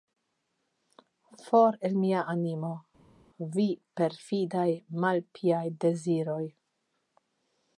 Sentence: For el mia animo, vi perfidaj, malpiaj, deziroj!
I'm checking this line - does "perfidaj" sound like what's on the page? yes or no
yes